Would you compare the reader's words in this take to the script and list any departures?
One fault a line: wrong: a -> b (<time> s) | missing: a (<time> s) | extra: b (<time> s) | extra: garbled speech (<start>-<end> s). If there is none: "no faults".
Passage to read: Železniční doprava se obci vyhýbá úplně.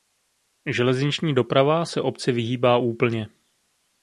no faults